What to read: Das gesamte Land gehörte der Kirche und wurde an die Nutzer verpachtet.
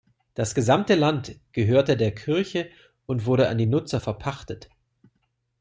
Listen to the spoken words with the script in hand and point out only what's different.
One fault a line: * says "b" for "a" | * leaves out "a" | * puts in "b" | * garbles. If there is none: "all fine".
all fine